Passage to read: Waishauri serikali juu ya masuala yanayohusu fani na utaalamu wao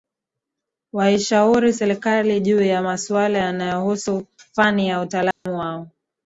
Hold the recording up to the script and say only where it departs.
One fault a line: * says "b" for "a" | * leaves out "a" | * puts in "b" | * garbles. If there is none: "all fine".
all fine